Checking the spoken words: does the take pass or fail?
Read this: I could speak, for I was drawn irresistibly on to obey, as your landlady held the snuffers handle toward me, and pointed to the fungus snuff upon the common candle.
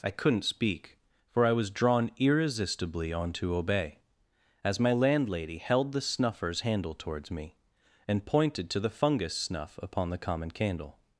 fail